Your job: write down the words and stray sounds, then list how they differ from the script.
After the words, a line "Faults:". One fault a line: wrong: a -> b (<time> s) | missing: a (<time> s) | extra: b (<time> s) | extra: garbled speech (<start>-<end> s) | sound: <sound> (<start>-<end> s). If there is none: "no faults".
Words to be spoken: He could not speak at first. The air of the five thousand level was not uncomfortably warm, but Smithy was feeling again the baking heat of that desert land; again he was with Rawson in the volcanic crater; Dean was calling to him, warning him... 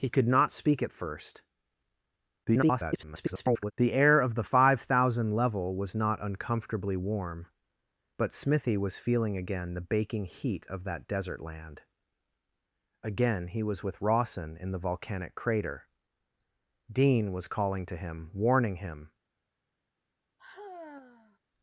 He could not speak at first. [garbled] The air of the five thousand level was not uncomfortably warm, but Smithy was feeling again the baking heat of that desert land; again he was with Rawson in the volcanic crater; Dean was calling to him, warning him...
Faults:
extra: garbled speech (2.4-3.7 s)
sound: sigh (20.4-21.4 s)